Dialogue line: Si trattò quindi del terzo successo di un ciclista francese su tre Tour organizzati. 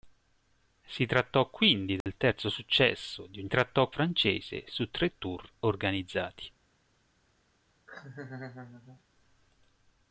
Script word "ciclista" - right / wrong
wrong